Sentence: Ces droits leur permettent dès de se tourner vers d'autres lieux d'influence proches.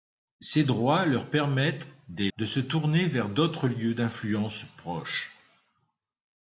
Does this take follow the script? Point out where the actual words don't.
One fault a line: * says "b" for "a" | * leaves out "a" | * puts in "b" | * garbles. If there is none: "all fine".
all fine